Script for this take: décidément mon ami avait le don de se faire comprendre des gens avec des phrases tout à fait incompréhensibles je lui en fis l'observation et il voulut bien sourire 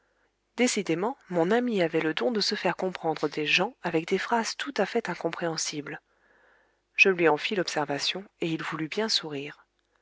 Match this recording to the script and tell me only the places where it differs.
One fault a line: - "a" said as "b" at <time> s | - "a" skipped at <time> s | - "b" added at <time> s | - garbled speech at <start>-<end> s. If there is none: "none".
none